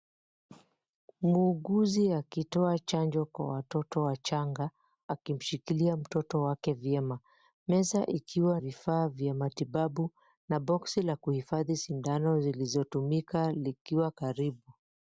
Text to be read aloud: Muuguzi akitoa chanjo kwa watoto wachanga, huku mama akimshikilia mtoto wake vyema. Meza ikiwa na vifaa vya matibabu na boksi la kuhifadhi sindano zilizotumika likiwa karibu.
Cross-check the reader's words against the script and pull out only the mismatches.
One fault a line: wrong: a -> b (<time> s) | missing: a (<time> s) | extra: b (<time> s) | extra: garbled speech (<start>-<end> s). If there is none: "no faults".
missing: huku mama (4.7 s)
missing: na (8.6 s)